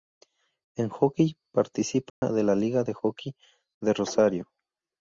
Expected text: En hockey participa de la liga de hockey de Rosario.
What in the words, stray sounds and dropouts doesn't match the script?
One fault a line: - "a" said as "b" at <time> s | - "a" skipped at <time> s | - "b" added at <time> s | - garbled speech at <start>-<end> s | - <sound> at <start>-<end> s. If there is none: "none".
- dropout at 2.1-2.2 s